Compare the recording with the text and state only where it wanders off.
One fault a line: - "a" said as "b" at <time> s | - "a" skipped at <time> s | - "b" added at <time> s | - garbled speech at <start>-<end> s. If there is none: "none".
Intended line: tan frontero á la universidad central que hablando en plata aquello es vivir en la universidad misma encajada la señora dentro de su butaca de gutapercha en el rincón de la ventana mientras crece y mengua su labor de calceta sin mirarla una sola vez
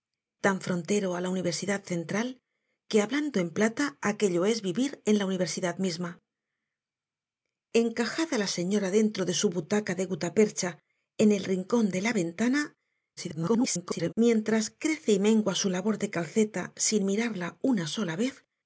- garbled speech at 13.2-14.1 s